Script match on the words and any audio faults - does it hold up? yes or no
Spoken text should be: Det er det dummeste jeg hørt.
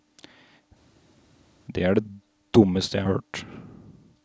yes